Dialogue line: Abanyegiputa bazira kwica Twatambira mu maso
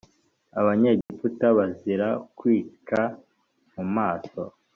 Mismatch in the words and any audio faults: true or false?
true